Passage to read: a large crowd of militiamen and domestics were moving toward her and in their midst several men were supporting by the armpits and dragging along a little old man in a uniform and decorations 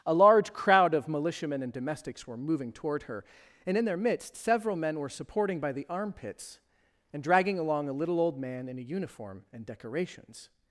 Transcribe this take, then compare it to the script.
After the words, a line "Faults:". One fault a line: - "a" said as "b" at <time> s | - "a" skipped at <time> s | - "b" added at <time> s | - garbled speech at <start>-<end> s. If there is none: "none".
a large crowd of militiamen and domestics were moving toward her and in their midst several men were supporting by the armpits and dragging along a little old man in a uniform and decorations
Faults:
none